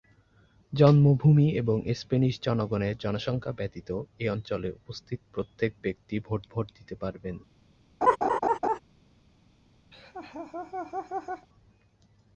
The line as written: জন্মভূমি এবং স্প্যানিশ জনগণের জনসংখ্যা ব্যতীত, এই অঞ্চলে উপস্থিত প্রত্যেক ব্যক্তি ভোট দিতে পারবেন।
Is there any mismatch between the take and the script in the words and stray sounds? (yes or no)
yes